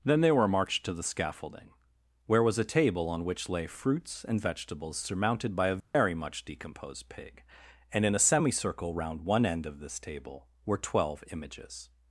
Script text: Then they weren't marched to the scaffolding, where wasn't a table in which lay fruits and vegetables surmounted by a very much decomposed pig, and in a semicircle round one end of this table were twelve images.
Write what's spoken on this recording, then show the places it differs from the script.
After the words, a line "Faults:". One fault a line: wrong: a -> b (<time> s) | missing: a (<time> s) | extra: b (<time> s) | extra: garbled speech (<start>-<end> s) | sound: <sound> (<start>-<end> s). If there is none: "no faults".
Then they were marched to the scaffolding, where was a table on which lay fruits and vegetables surmounted by a very much decomposed pig, and in a semicircle round one end of this table were twelve images.
Faults:
wrong: weren't -> were (0.3 s)
wrong: wasn't -> was (2.4 s)
wrong: in -> on (3.1 s)
sound: dropout (5.8-5.9 s)